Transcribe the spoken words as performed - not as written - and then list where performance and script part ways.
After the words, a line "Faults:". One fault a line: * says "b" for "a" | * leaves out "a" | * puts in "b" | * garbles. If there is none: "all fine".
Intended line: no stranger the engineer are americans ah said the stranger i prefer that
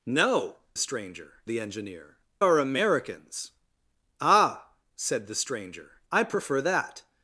no stranger the engineer are americans ah said the stranger i prefer that
Faults:
all fine